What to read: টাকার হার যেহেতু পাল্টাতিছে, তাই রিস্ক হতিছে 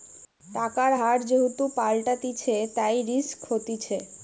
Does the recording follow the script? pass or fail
pass